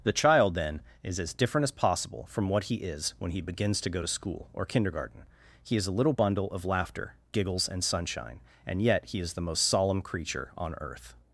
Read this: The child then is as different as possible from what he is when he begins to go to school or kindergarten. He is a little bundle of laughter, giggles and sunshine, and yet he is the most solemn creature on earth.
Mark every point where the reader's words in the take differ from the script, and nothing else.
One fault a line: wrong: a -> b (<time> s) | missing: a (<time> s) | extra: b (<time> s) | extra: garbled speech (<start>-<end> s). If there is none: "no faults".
no faults